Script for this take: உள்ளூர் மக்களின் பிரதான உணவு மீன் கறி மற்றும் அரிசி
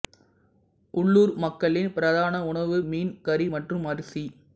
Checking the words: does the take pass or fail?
pass